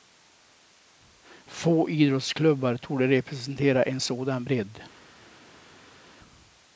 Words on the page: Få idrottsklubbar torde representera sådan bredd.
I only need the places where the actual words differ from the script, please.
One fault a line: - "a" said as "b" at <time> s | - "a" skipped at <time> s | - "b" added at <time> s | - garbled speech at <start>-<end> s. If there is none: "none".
- "en" added at 3.8 s